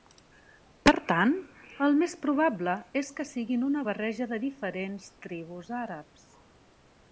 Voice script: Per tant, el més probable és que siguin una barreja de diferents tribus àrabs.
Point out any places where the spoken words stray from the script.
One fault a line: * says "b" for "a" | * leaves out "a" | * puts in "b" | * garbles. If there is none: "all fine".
all fine